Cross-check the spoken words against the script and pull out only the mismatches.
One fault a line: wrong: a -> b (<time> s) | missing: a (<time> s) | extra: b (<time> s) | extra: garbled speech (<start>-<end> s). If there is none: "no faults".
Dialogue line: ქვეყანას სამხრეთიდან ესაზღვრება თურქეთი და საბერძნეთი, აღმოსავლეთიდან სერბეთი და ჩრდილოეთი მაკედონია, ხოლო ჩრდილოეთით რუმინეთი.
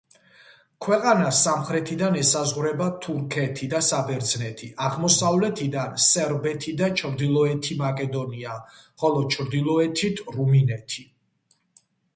no faults